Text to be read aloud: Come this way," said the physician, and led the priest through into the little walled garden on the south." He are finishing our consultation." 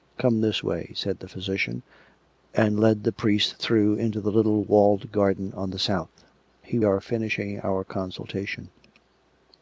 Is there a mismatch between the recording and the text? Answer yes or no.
no